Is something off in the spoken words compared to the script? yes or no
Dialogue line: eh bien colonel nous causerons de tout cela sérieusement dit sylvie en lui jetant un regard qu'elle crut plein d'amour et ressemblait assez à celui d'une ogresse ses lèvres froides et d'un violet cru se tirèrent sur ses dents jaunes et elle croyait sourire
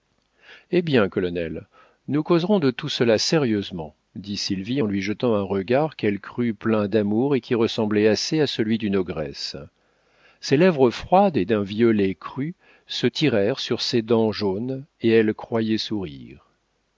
yes